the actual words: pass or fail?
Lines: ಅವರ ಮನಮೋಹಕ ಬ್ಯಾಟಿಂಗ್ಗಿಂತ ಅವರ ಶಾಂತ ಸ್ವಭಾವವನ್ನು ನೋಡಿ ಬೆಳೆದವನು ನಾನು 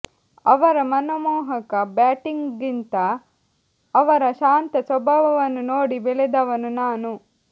pass